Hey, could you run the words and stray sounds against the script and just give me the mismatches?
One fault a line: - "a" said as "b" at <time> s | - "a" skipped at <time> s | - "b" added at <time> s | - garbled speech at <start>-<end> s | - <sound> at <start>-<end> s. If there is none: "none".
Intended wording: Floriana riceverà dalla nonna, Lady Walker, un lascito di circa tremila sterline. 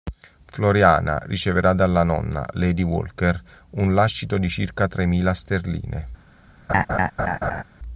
- laugh at 6.7-7.6 s